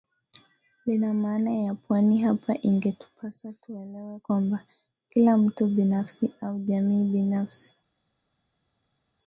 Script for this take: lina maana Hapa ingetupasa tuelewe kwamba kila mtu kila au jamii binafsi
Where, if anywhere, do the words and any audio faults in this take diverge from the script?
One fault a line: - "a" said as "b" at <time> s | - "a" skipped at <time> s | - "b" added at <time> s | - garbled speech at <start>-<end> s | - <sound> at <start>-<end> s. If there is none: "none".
- "ya pwani" added at 1.5 s
- "kila" said as "binafsi" at 5.7 s